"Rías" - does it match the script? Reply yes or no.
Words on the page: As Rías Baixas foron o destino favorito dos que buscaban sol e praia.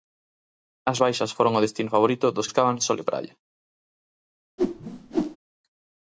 no